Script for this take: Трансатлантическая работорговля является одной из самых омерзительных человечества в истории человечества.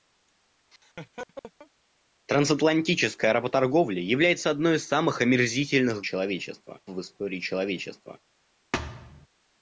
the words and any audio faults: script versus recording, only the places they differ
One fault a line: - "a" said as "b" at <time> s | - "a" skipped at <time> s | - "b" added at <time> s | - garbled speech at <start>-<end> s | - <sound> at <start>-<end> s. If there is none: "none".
- laugh at 0.7-1.7 s
- thud at 8.7-9.3 s